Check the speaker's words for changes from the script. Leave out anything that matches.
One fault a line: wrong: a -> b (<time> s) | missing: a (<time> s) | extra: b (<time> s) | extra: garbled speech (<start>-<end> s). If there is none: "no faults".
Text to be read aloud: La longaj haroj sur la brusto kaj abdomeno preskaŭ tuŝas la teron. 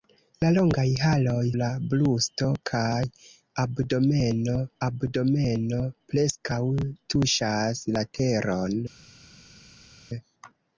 missing: sur (1.4 s)
extra: abdomeno (4.9 s)